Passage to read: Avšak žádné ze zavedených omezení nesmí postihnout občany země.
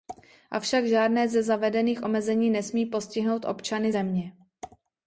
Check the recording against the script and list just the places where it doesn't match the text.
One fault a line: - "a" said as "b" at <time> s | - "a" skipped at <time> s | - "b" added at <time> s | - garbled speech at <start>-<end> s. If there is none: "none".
none